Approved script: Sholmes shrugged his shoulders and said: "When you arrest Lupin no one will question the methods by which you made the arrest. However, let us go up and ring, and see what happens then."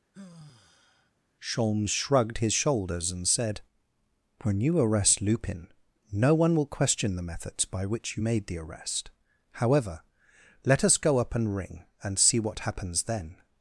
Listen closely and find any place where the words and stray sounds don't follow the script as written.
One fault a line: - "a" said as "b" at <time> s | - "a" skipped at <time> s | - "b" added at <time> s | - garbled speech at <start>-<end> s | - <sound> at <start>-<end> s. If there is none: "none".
- sigh at 0.1-1.1 s